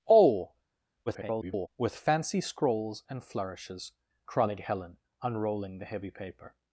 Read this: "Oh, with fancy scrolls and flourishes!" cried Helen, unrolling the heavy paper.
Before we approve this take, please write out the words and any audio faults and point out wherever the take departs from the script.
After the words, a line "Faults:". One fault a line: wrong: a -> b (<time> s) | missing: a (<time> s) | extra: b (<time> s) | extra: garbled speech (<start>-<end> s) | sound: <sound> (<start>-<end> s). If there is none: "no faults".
"Oh, [garbled] with fancy scrolls and flourishes!" cried Helen, unrolling the heavy paper.
Faults:
extra: garbled speech (1.1-1.7 s)